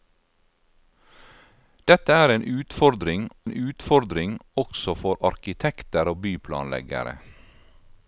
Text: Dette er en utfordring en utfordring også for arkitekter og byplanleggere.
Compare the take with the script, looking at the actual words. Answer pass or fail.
pass